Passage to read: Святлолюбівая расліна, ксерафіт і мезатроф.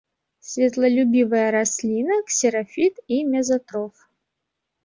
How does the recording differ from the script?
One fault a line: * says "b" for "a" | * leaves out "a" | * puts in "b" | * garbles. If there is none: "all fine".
all fine